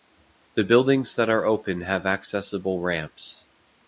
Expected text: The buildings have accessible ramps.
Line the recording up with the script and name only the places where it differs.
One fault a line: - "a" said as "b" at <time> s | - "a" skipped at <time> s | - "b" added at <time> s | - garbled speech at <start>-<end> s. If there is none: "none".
- "that are open" added at 1.1 s